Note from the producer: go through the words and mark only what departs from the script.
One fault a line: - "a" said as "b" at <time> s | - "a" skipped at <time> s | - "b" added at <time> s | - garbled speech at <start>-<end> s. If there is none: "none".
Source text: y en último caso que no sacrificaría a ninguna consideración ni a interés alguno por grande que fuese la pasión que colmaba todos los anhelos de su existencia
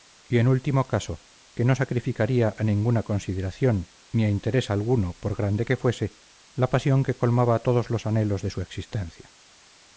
none